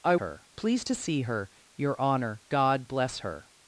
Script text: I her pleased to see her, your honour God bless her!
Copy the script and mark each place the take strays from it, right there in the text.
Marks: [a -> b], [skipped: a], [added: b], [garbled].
I her pleased to see her, your honour God bless her!